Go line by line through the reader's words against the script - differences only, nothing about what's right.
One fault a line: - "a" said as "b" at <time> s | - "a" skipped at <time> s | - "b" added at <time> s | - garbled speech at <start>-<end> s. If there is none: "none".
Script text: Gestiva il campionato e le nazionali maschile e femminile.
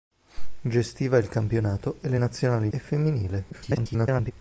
- "maschile" skipped at 2.7 s
- garbled speech at 3.5-4.3 s